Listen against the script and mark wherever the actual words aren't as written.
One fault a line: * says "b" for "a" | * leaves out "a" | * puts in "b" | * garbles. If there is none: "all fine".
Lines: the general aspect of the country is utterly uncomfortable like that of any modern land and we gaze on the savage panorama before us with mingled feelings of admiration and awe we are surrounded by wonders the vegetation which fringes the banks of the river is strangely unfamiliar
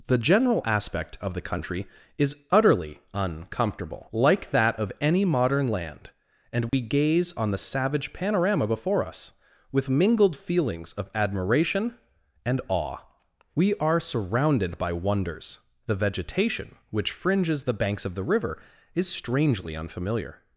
all fine